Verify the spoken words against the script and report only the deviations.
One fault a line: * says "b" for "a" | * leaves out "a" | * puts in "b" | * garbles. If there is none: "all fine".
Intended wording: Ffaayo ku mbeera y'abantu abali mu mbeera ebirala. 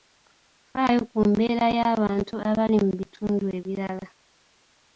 * says "bitundu" for "mbeera"